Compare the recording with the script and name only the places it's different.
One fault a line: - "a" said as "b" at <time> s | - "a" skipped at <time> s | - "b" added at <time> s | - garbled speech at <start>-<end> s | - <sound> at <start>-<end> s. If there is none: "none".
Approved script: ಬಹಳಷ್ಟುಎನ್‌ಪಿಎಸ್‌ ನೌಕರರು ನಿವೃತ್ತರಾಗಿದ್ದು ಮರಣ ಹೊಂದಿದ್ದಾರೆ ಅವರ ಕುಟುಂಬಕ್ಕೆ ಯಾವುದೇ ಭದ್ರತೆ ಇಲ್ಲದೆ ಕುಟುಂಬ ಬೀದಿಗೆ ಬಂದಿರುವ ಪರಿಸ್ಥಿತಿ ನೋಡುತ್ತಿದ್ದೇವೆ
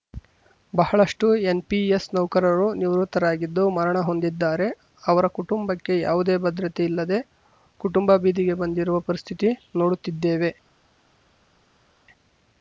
none